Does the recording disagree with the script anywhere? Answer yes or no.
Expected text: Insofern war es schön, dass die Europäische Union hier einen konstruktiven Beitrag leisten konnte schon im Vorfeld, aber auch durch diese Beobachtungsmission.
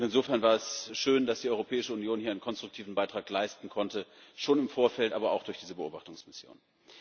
no